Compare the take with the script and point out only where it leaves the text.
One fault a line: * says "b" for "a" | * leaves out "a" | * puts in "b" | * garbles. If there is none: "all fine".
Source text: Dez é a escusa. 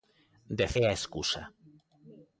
all fine